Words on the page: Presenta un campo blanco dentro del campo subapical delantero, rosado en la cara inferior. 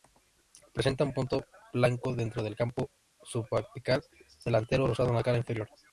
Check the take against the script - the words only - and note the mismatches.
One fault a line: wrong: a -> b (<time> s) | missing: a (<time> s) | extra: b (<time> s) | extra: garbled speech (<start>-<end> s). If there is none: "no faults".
wrong: campo -> punto (1.1 s)